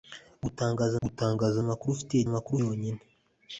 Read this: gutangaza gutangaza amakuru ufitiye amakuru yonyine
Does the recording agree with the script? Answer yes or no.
yes